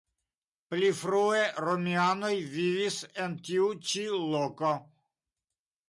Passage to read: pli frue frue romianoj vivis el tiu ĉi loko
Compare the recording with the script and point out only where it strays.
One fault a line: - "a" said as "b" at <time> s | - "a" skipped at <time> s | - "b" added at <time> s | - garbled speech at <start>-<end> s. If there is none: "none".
- "frue" skipped at 1.4 s
- "el" said as "en" at 3.3 s